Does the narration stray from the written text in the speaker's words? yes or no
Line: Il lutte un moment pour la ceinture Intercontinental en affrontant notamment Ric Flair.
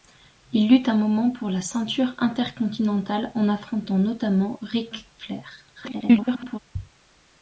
yes